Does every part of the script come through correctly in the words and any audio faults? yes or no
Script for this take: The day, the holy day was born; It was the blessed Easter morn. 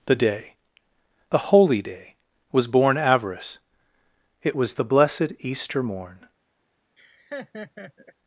no